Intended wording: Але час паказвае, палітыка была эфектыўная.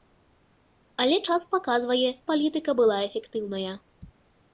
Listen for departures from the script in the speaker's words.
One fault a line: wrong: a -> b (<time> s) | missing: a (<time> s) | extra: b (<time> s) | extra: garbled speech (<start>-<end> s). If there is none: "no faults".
no faults